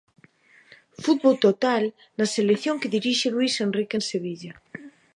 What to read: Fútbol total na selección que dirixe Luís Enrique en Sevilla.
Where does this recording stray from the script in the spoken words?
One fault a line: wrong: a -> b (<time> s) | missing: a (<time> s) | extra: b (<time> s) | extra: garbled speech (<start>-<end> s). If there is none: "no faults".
no faults